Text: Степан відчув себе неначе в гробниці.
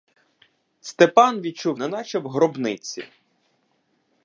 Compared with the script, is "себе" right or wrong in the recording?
wrong